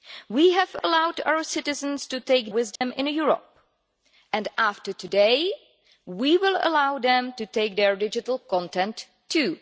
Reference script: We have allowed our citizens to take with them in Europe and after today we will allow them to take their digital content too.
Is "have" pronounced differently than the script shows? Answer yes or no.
no